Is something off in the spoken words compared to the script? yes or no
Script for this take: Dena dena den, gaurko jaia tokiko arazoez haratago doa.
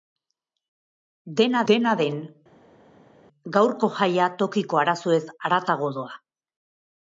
no